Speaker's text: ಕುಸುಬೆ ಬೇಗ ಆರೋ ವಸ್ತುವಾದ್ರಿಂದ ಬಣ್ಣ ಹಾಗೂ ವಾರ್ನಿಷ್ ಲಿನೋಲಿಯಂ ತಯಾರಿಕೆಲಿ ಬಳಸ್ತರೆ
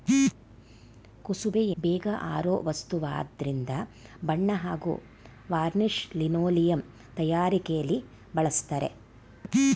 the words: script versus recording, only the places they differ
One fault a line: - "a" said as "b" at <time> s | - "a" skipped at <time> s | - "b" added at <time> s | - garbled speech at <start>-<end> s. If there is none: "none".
none